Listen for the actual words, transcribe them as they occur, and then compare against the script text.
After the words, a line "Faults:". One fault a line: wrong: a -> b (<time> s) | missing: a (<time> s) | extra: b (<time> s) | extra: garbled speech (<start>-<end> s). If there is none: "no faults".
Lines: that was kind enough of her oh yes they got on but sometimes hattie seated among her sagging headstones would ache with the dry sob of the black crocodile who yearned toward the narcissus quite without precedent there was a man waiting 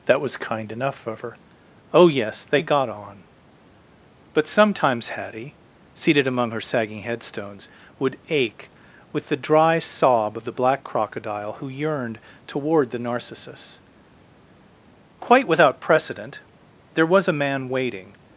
that was kind enough of her oh yes they got on but sometimes hattie seated among her sagging headstones would ache with the dry sob of the black crocodile who yearned toward the narcissus quite without precedent there was a man waiting
Faults:
no faults